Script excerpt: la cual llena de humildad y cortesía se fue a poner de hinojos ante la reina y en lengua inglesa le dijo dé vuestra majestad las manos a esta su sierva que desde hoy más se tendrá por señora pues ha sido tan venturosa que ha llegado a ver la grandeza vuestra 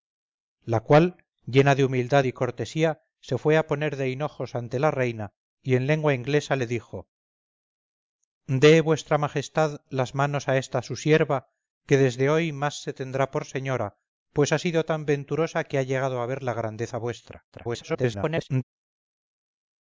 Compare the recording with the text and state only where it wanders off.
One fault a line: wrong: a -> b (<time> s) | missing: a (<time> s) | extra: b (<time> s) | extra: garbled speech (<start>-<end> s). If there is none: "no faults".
extra: garbled speech (17.5-18.6 s)